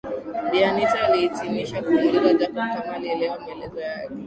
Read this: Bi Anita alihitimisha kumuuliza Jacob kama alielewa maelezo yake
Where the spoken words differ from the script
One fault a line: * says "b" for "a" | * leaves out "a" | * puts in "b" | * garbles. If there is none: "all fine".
all fine